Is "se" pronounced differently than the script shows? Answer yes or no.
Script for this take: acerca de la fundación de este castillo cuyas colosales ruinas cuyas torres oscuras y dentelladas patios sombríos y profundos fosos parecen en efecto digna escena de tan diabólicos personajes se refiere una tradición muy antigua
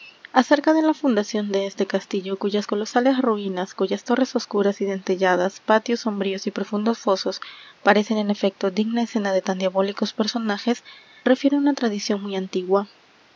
yes